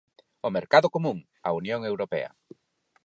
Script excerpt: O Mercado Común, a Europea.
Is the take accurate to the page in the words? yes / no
no